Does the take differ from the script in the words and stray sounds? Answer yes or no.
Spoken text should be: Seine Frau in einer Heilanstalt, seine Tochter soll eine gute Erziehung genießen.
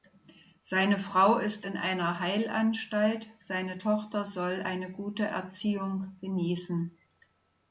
yes